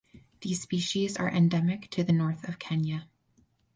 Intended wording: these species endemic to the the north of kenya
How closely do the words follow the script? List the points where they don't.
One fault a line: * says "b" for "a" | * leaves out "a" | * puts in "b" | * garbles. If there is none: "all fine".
* puts in "are"
* leaves out "the"